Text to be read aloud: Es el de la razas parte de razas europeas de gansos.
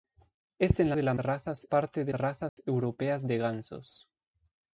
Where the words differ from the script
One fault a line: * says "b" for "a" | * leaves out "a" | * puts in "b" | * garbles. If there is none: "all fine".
all fine